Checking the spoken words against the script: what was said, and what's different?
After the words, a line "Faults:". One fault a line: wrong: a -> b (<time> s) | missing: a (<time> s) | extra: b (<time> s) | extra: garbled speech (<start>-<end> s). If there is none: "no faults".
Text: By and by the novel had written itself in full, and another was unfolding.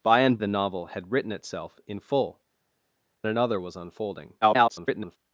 By and the novel had written itself in full, another was unfolding. [garbled]
Faults:
missing: by (0.4 s)
missing: and (2.4 s)
extra: garbled speech (4.4-5.2 s)